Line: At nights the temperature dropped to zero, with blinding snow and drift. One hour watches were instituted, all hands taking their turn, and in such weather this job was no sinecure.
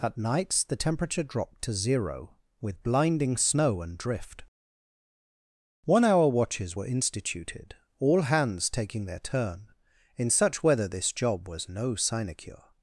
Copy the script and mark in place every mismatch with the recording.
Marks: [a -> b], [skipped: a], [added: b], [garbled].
At nights the temperature dropped to zero, with blinding snow and drift. One hour watches were instituted, all hands taking their turn, [skipped: and] in such weather this job was no sinecure.